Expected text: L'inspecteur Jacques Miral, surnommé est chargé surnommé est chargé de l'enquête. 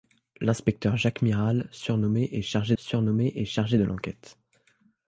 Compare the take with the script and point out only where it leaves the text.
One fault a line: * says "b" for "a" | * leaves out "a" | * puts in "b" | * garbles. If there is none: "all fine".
all fine